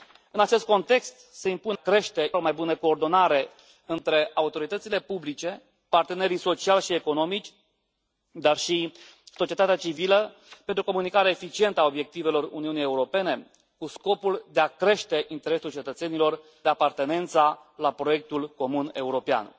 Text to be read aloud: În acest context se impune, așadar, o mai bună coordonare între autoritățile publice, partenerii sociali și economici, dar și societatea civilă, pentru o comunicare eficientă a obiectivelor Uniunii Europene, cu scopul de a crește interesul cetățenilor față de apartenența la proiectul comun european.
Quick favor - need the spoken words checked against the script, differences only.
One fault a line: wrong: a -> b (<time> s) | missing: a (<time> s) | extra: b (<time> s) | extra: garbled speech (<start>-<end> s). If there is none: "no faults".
wrong: așadar -> crește (1.7 s)
missing: față (16.4 s)